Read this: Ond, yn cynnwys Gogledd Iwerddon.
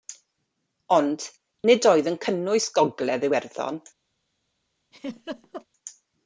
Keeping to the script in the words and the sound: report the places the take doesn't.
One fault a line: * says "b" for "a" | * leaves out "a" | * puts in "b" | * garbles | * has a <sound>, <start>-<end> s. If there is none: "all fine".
* puts in "nid oedd"
* has a laugh, 4.9-5.7 s